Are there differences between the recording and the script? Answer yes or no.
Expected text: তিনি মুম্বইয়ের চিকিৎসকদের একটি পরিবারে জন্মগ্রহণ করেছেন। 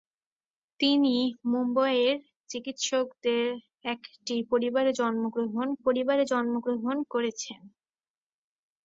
yes